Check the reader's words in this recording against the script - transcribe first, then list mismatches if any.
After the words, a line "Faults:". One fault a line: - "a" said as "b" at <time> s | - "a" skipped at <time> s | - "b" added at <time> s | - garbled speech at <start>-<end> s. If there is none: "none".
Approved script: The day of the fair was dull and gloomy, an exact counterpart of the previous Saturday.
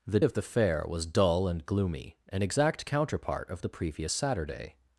The of the fair was dull and gloomy, an exact counterpart of the previous Saturday.
Faults:
- "day" skipped at 0.2 s